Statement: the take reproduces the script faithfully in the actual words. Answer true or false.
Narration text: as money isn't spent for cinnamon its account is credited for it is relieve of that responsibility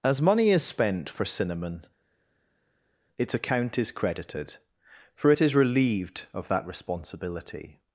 false